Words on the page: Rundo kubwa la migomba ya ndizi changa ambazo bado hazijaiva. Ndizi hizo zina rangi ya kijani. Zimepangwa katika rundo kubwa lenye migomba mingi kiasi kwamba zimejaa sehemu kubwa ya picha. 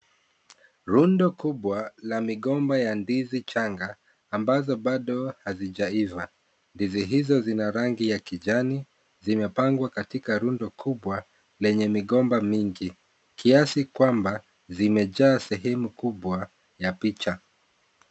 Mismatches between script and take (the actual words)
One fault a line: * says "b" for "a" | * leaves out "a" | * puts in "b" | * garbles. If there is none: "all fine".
all fine